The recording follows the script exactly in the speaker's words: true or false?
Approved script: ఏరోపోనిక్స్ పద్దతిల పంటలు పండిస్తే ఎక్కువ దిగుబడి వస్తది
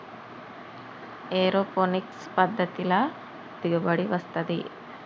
false